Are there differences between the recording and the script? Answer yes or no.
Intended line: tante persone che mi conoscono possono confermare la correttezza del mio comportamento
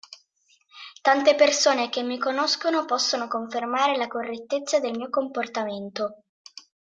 no